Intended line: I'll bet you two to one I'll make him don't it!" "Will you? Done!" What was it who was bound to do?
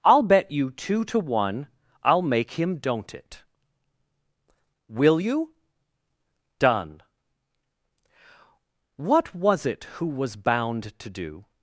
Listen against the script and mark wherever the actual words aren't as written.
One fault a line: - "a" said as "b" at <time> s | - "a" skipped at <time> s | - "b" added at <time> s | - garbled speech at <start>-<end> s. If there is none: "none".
none